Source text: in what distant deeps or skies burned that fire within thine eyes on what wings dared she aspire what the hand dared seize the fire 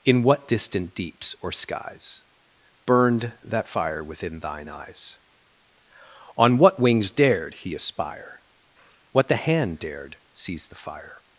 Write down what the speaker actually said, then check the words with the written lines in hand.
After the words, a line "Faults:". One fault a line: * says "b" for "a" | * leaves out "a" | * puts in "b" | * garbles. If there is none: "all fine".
in what distant deeps or skies burned that fire within thine eyes on what wings dared he aspire what the hand dared seize the fire
Faults:
* says "he" for "she"